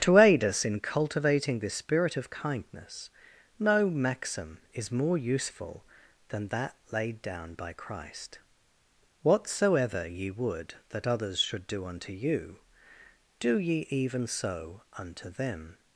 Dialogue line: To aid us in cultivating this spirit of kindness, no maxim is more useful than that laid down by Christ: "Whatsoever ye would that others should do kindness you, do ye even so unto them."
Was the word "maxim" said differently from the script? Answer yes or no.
no